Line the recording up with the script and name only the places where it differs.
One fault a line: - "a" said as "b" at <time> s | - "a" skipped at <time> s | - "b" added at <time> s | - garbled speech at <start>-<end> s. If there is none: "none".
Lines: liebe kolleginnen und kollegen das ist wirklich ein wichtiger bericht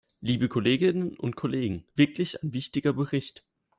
- "das ist" skipped at 1.9 s